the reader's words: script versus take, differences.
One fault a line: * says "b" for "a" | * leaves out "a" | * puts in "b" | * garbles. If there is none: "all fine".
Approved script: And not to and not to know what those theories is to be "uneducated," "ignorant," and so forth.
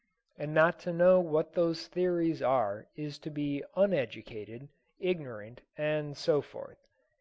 * leaves out "and not to"
* puts in "are"